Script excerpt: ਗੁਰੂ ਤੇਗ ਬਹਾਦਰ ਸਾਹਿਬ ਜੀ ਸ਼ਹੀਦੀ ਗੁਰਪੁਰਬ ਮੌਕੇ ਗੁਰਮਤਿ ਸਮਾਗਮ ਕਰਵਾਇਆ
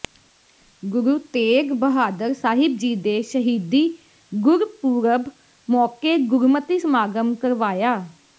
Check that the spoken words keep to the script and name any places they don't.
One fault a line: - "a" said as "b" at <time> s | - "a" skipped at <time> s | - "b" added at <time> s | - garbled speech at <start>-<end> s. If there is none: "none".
- "ਦੇ" added at 3.0 s